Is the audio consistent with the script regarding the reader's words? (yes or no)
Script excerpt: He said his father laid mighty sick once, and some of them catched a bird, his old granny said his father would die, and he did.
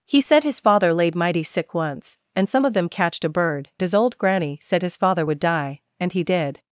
yes